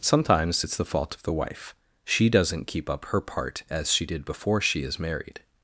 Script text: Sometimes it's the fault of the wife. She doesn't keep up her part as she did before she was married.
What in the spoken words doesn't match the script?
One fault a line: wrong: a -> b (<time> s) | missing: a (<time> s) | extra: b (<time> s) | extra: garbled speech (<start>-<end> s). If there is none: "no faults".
wrong: was -> is (4.8 s)